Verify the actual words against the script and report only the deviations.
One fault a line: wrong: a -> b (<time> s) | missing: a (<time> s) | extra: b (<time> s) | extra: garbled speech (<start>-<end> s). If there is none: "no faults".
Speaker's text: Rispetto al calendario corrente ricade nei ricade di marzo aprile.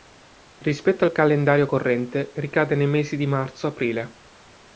wrong: ricade -> mesi (2.9 s)